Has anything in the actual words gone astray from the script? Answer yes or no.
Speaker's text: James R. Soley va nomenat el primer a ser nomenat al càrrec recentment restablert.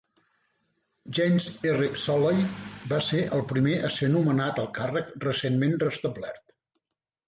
yes